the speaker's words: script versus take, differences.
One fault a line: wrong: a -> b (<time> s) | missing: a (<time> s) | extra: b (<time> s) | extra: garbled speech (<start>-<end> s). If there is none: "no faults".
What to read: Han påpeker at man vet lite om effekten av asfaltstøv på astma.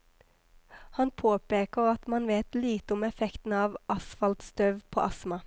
no faults